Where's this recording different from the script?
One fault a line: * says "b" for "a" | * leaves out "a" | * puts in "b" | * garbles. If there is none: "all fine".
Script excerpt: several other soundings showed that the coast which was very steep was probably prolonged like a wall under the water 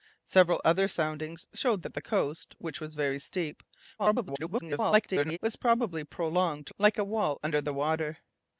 * garbles